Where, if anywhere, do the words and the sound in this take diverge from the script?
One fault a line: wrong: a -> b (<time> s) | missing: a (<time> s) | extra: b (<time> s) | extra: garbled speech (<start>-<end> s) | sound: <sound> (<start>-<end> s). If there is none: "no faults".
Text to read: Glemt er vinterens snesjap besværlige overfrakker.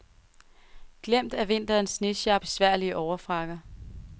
no faults